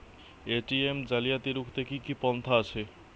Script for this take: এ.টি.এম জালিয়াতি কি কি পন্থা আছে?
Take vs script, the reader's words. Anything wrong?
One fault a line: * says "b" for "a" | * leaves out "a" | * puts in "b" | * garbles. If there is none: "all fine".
* puts in "রুখতে"